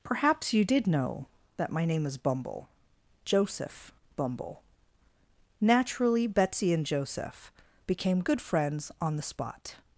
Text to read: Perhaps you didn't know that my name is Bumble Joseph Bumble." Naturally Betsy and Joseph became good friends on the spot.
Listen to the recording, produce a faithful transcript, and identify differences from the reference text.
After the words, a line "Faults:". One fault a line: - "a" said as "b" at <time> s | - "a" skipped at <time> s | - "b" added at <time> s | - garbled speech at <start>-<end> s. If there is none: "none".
Perhaps you did know that my name is Bumble Joseph Bumble." Naturally Betsy and Joseph became good friends on the spot.
Faults:
- "didn't" said as "did" at 0.7 s